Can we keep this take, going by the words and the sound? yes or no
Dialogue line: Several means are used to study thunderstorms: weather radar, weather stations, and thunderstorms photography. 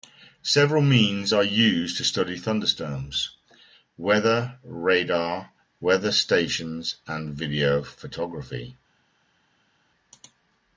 no